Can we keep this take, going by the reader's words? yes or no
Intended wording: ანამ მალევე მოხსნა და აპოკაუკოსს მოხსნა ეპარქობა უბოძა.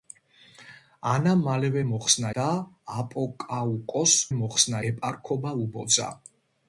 yes